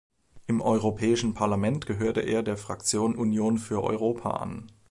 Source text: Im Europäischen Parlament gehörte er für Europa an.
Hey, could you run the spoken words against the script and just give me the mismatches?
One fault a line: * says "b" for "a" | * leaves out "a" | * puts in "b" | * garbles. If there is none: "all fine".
* puts in "der Fraktion Union"